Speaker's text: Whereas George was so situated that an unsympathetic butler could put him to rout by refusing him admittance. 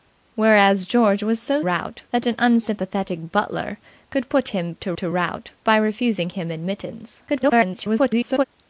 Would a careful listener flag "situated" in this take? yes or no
yes